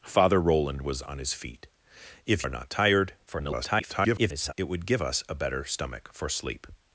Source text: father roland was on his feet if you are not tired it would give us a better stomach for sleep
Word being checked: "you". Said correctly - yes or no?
no